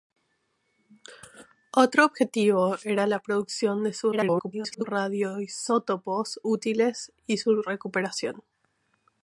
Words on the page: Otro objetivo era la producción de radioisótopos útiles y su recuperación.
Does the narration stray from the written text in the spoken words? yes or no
yes